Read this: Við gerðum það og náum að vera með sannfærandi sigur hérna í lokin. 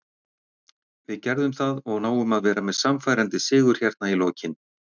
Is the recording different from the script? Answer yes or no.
no